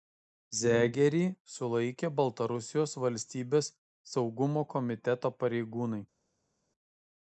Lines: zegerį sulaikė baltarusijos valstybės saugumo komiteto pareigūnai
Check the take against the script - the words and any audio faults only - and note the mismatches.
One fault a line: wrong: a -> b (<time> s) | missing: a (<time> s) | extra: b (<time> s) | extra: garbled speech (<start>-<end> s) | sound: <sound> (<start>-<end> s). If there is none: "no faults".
no faults